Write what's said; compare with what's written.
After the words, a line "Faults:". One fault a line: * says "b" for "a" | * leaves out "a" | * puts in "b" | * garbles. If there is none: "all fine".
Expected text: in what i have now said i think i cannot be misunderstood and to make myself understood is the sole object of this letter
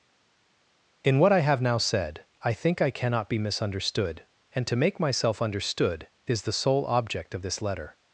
in what i have now said i think i cannot be misunderstood and to make myself understood is the sole object of this letter
Faults:
all fine